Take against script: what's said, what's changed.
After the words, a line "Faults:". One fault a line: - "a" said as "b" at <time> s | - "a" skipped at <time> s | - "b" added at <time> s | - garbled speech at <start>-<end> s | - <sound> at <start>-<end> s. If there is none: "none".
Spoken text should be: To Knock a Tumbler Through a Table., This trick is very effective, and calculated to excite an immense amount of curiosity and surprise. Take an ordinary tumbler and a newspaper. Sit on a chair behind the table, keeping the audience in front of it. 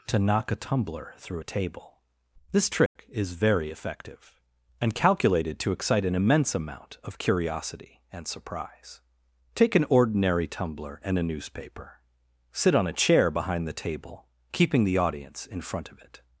To Knock a Tumbler Through a Table., This trick is very effective, and calculated to excite an immense amount of curiosity and surprise. Take an ordinary tumbler and a newspaper. Sit on a chair behind the table, keeping the audience in front of it.
Faults:
- dropout at 2.9-3.0 s